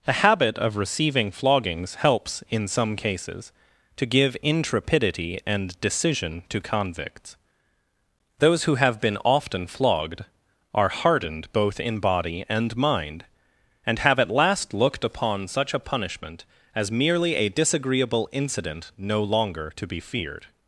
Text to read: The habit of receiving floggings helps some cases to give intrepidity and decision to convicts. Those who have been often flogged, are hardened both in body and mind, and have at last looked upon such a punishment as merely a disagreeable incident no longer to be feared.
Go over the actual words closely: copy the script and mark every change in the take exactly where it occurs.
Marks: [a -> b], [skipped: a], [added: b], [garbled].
The habit of receiving floggings helps [added: in] some cases to give intrepidity and decision to convicts. Those who have been often flogged, are hardened both in body and mind, and have at last looked upon such a punishment as merely a disagreeable incident no longer to be feared.